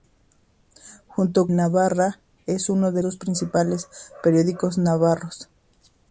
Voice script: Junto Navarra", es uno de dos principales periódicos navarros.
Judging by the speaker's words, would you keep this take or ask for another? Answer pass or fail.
pass